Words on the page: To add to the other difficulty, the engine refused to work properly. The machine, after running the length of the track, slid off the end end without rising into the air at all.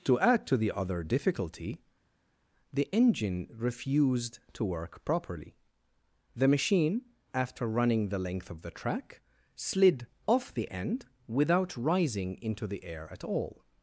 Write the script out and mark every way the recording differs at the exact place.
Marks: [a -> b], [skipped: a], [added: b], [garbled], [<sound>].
To add to the other difficulty, the engine refused to work properly. The machine, after running the length of the track, slid off the end [skipped: end] without rising into the air at all.